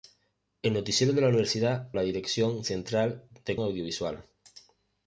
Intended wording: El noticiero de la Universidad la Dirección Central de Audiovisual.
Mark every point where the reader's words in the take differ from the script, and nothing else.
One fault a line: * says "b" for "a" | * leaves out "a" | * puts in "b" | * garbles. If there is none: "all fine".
all fine